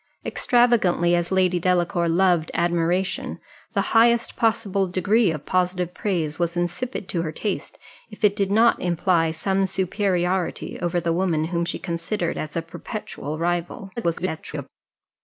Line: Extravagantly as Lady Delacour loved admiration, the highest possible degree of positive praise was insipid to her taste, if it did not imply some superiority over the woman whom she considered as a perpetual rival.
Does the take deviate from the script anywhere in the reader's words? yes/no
yes